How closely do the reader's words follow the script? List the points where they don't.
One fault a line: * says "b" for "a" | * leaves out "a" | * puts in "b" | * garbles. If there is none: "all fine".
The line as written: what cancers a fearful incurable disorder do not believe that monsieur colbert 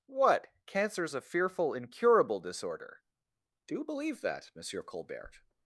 * leaves out "not"